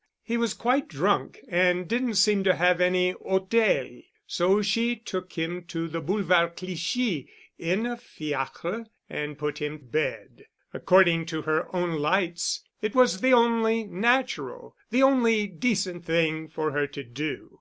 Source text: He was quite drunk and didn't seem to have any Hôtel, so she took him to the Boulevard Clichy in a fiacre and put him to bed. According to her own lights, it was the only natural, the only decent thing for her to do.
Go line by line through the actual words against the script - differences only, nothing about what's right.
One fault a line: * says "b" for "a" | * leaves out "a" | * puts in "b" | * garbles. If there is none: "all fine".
* leaves out "to"